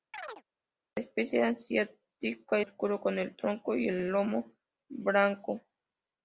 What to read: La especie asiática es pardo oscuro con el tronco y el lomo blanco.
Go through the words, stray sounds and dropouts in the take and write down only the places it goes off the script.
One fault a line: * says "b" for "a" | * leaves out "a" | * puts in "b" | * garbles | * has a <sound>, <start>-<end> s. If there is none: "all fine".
* has a chirp, 0.1-0.4 s
* leaves out "es pardo"
* puts in "el"